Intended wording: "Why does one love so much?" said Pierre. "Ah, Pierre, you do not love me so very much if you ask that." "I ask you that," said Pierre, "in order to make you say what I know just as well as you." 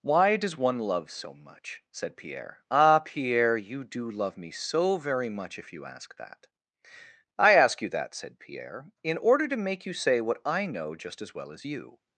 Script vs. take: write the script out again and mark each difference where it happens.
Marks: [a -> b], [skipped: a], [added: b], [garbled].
"Why does one love so much?" said Pierre. "Ah, Pierre, you do [skipped: not] love me so very much if you ask that." "I ask you that," said Pierre, "in order to make you say what I know just as well as you."